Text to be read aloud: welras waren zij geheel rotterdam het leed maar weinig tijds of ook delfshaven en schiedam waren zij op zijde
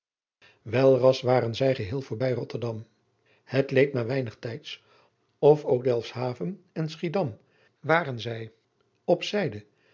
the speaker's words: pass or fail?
fail